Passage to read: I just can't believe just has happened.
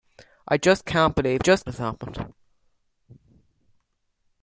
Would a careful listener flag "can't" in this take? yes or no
no